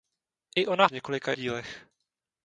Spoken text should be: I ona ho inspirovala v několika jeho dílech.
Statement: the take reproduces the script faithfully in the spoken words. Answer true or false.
false